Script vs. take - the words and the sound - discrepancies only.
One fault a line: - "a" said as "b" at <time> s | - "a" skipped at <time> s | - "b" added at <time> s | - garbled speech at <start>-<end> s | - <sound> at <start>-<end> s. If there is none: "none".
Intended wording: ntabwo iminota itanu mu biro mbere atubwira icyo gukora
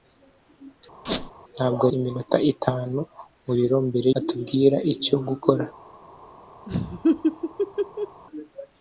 - squeak at 1.1-1.3 s
- laugh at 6.7-8.2 s